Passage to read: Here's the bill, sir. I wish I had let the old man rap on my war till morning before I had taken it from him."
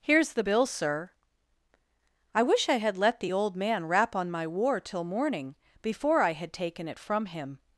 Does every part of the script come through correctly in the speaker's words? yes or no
yes